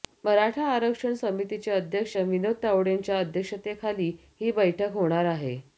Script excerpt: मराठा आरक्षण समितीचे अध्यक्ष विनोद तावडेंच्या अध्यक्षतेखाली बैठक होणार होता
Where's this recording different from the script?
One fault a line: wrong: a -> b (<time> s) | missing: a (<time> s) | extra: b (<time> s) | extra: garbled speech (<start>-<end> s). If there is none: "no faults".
extra: ही (4.4 s)
wrong: होता -> आहे (5.3 s)